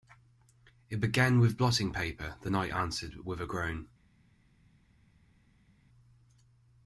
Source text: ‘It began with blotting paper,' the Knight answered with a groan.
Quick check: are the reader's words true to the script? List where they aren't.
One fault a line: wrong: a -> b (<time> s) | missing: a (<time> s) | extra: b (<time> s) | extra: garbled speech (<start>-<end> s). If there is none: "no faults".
no faults